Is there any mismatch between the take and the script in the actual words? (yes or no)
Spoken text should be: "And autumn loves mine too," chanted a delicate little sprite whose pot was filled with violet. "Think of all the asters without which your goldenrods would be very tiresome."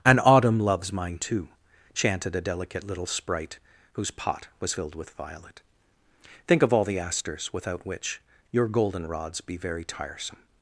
yes